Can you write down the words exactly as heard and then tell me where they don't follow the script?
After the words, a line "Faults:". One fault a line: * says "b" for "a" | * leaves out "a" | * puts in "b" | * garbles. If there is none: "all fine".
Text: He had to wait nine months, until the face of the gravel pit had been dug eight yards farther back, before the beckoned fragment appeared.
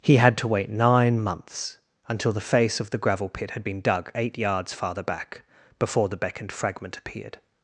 He had to wait nine months, until the face of the gravel pit had been dug eight yards farther back, before the beckoned fragment appeared.
Faults:
all fine